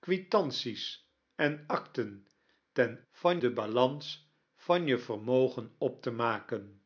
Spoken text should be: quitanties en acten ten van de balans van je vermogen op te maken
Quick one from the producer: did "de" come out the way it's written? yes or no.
yes